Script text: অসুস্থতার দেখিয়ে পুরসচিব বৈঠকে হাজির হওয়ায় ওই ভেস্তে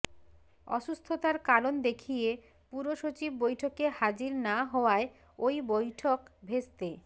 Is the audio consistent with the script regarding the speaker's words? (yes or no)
no